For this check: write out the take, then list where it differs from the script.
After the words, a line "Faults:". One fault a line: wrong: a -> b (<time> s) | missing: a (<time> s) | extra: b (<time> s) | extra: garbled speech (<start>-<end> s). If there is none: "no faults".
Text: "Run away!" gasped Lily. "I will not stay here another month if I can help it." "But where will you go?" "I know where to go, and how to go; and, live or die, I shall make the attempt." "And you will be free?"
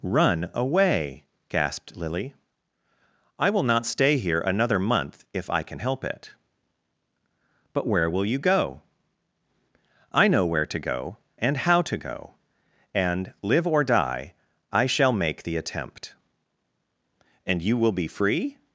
"Run away!" gasped Lily. "I will not stay here another month if I can help it." "But where will you go?" "I know where to go, and how to go; and, live or die, I shall make the attempt." "And you will be free?"
Faults:
no faults